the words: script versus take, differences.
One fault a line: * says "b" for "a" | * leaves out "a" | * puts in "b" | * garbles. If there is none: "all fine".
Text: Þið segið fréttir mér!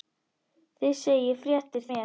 all fine